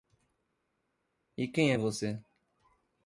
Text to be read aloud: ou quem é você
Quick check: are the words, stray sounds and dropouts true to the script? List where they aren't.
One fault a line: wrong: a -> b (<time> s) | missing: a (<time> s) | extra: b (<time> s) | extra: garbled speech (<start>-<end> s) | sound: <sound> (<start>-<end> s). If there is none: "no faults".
wrong: ou -> e (1.4 s)